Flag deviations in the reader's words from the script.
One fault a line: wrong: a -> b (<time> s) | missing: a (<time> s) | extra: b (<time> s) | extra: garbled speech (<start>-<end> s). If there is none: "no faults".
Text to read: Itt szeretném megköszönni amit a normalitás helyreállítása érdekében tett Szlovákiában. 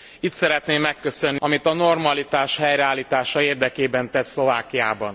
no faults